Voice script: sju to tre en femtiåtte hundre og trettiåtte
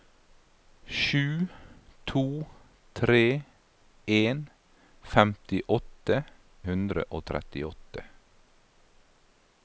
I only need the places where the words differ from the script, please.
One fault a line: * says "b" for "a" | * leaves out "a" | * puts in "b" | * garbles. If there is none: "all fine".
all fine